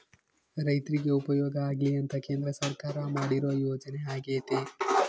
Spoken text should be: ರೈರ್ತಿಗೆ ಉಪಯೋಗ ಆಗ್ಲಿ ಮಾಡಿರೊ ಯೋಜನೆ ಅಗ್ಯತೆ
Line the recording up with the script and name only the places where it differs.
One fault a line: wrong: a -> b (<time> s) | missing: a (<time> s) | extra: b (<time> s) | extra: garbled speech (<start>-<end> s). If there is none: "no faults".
extra: ಅಂತ ಕೇಂದ್ರ ಸರ್ಕಾರ (1.9 s)